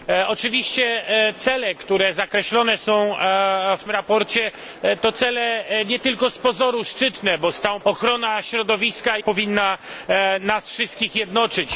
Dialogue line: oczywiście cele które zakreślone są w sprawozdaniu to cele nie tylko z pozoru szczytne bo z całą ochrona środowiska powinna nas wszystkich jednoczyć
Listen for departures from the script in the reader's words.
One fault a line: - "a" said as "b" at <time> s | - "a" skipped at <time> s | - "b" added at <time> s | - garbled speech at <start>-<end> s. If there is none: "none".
none